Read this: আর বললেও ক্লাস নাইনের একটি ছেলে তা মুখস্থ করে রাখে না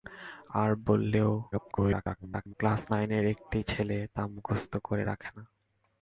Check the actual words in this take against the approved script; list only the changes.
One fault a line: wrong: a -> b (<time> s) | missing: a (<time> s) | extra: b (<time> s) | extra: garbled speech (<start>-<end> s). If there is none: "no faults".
extra: garbled speech (1.5-2.5 s)